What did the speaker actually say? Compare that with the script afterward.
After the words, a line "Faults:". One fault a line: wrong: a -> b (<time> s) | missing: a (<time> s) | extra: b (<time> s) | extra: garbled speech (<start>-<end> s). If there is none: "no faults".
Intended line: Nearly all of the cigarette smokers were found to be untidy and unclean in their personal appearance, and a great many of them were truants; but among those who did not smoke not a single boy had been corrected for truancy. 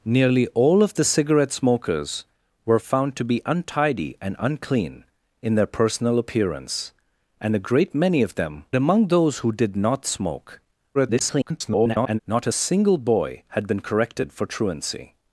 Nearly all of the cigarette smokers were found to be untidy and unclean in their personal appearance, and a great many of them among those who did not smoke [garbled] not a single boy had been corrected for truancy.
Faults:
missing: were truants but (8.7 s)
extra: garbled speech (10.9-12.2 s)